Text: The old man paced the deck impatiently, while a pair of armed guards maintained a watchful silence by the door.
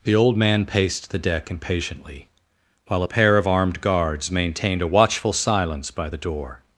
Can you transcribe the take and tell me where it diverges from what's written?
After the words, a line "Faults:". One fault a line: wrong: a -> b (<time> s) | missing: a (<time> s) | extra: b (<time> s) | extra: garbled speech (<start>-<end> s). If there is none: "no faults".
The old man paced the deck impatiently, while a pair of armed guards maintained a watchful silence by the door.
Faults:
no faults